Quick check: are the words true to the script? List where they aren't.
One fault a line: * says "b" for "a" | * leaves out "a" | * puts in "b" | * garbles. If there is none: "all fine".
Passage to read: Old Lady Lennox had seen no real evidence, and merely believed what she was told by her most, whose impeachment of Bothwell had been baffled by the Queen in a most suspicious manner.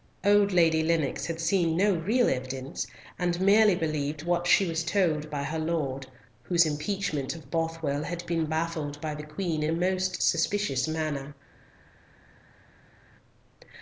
* says "lord" for "most"